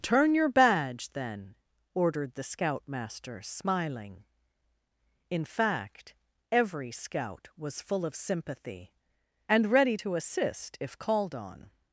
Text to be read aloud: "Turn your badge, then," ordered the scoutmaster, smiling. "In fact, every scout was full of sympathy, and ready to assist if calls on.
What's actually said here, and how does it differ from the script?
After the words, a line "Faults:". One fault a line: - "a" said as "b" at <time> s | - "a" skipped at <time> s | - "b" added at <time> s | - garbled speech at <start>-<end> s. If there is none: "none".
"Turn your badge, then," ordered the scoutmaster, smiling. "In fact, every scout was full of sympathy, and ready to assist if called on.
Faults:
- "calls" said as "called" at 11.0 s